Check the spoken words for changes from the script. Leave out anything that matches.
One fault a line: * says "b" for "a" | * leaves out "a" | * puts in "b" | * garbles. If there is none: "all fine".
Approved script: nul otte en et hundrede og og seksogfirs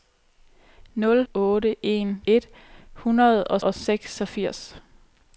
all fine